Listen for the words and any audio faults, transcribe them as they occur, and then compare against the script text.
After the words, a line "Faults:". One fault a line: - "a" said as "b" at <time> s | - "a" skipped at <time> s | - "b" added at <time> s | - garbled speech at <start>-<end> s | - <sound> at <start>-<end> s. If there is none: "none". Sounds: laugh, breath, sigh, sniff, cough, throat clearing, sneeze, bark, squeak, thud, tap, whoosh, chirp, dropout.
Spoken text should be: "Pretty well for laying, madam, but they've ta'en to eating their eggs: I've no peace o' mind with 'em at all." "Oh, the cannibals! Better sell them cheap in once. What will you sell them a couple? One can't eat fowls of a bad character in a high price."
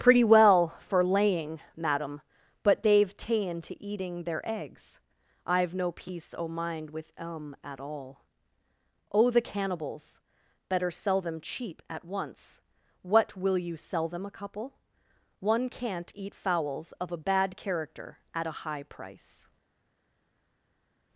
"Pretty well for laying, madam, but they've ta'en to eating their eggs: I've no peace o' mind with 'em at all." "Oh, the cannibals! Better sell them cheap at once. What will you sell them a couple? One can't eat fowls of a bad character at a high price."
Faults:
- "in" said as "at" at 11.9 s
- "in" said as "at" at 18.3 s